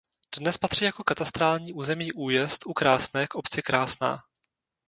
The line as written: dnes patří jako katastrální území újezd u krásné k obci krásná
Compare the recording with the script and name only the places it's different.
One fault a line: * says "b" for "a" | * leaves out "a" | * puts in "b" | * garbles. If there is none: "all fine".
all fine